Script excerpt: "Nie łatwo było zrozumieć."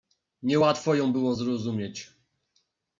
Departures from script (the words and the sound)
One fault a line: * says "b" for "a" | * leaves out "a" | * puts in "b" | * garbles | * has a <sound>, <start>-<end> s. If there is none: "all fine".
* puts in "ją"